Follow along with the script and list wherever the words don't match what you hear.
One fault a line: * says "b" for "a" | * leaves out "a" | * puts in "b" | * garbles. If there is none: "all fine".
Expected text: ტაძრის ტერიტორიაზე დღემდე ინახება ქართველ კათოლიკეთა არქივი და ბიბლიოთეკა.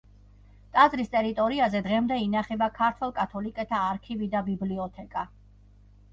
all fine